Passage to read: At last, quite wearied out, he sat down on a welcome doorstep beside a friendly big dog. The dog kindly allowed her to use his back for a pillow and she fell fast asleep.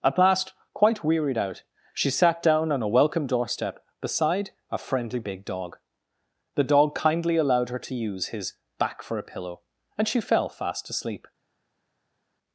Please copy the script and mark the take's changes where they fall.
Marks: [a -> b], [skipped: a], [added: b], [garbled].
At last, quite wearied out, [he -> she] sat down on a welcome doorstep beside a friendly big dog. The dog kindly allowed her to use his back for a pillow and she fell fast asleep.